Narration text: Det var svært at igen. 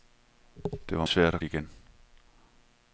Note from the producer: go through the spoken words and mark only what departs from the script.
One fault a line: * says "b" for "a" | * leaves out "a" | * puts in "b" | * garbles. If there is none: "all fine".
all fine